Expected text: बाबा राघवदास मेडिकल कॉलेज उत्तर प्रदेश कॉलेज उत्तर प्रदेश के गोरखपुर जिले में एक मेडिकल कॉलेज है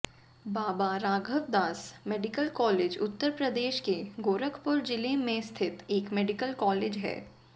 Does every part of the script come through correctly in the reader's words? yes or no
no